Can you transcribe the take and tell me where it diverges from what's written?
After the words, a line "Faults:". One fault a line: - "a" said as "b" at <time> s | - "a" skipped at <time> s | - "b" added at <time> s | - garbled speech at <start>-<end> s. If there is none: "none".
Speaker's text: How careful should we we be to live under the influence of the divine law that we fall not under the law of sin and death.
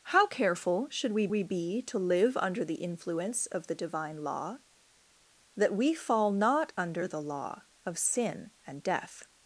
How careful should we we be to live under the influence of the divine law that we fall not under the law of sin and death.
Faults:
none